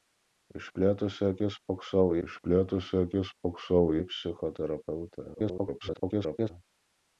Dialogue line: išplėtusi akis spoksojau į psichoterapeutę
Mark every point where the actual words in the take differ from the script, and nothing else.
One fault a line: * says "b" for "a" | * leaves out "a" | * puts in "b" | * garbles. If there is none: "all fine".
* puts in "išplėtusi akis spoksojau"
* garbles